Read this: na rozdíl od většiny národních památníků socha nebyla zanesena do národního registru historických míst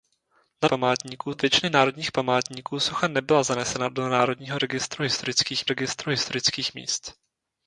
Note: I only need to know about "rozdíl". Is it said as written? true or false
false